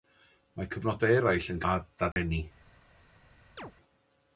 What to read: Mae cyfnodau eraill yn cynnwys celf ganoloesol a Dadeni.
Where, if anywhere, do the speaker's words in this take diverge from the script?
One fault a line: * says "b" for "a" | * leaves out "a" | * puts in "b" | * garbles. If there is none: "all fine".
* leaves out "cynnwys celf ganoloesol"